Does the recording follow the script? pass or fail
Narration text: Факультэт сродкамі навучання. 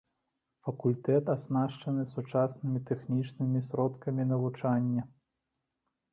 fail